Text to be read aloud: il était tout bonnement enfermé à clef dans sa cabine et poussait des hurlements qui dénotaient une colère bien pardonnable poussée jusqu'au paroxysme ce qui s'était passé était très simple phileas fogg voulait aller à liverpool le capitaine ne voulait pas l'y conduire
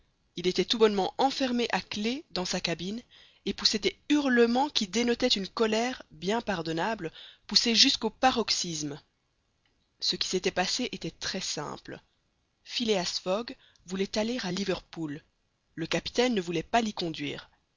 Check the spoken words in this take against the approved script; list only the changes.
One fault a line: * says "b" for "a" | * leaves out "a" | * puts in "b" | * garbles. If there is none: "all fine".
all fine